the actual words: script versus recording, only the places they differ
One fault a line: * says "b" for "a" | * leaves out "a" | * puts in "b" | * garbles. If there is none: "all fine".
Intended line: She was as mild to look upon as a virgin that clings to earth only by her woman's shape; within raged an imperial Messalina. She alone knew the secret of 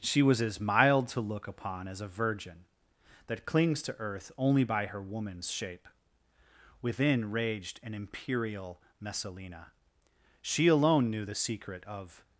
all fine